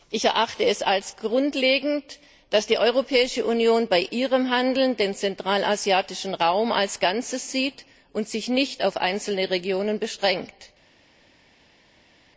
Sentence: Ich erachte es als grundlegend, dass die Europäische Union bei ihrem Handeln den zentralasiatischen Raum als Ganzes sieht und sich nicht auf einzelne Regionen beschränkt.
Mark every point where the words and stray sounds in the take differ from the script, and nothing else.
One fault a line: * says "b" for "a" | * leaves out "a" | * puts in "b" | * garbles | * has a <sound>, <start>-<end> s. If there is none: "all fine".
all fine